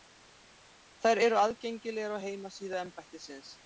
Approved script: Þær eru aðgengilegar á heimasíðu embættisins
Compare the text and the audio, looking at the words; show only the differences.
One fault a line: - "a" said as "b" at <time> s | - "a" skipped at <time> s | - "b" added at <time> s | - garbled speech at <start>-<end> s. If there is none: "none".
none